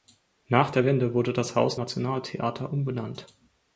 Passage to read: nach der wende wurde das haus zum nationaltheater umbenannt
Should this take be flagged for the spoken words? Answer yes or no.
yes